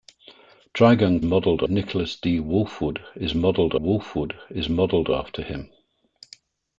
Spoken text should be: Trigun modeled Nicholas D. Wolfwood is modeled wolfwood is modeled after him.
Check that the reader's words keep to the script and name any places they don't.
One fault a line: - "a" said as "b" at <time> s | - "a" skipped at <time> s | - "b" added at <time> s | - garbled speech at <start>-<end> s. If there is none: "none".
none